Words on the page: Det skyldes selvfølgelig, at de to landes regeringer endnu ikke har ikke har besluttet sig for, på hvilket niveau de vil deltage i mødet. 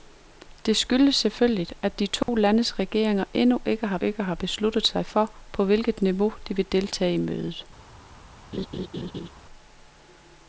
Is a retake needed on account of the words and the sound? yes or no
yes